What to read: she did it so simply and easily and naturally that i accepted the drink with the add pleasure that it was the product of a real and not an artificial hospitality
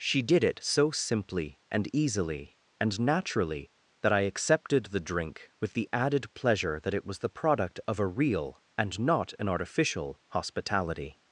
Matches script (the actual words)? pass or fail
fail